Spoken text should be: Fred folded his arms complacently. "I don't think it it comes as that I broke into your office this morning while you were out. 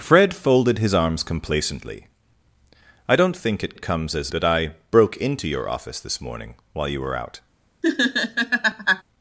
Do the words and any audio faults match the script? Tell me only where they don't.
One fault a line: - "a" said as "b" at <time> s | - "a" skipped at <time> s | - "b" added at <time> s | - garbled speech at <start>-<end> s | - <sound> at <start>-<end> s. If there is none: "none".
- laugh at 7.8-9.0 s